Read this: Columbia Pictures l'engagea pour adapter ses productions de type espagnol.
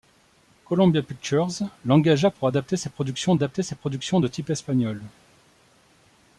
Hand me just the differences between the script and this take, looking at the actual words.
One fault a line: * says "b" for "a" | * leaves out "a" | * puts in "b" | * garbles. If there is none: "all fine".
* puts in "adapter ses productions"